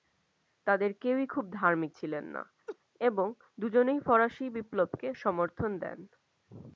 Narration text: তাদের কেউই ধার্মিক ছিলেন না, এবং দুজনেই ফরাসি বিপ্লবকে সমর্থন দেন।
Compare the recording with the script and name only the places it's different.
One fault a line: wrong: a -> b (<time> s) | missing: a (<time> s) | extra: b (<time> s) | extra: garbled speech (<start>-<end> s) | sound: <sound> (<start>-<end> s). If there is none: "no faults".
extra: খুব (1.3 s)
sound: laugh (2.7-2.8 s)